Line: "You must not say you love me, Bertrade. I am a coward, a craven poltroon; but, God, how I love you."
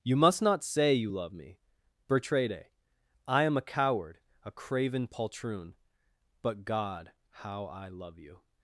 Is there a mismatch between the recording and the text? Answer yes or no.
no